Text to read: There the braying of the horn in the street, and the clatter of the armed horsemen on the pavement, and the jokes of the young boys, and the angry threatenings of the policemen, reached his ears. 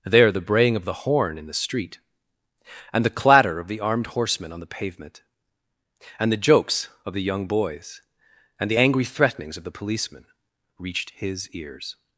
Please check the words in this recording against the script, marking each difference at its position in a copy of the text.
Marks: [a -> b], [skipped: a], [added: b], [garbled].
There the braying of the horn in the street, and the clatter of the armed horsemen on the pavement, and the jokes of the young boys, and the angry threatenings of the policemen, reached his ears.